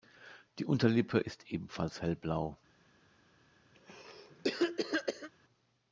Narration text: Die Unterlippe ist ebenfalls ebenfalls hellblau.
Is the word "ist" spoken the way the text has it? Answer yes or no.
yes